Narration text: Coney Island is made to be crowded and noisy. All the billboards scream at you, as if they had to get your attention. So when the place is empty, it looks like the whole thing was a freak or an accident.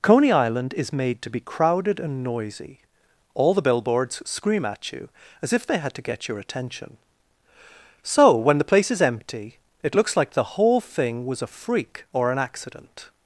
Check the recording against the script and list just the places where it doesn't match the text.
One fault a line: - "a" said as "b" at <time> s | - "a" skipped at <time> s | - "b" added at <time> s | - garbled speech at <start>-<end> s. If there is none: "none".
none